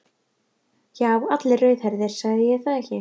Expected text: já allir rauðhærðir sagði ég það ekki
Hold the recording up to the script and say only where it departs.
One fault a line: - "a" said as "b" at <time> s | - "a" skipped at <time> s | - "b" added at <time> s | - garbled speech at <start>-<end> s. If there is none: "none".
none